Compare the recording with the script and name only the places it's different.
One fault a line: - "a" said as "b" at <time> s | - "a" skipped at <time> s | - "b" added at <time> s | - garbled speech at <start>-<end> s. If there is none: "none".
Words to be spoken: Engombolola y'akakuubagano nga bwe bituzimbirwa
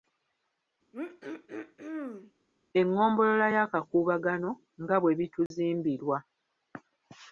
none